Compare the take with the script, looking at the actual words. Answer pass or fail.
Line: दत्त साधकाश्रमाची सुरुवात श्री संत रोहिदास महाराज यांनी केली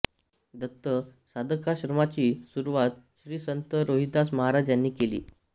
pass